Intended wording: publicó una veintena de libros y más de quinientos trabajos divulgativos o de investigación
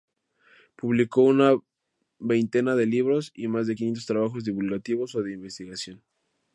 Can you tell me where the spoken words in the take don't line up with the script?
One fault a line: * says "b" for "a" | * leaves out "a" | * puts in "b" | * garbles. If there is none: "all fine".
all fine